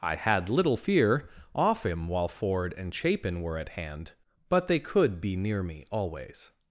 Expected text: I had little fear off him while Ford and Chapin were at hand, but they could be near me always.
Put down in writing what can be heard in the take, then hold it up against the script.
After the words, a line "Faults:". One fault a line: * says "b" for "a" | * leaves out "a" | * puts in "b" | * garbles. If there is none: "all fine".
I had little fear off him while Ford and Chapin were at hand, but they could be near me always.
Faults:
all fine